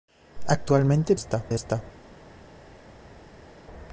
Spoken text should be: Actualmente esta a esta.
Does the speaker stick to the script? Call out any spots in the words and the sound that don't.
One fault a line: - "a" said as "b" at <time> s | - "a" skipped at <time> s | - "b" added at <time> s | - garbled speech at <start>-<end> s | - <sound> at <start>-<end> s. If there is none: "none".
none